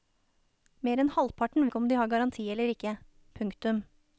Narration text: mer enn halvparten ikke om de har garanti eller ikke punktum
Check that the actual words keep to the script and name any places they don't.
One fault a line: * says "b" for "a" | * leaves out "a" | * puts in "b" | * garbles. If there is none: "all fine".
all fine